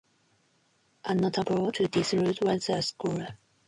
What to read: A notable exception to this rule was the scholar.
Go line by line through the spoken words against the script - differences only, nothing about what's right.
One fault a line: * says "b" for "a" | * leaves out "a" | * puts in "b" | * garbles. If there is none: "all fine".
* leaves out "exception"